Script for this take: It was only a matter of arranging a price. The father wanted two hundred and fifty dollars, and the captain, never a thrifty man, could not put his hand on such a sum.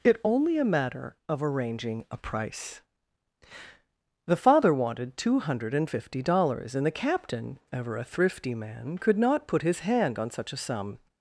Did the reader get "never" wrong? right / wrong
wrong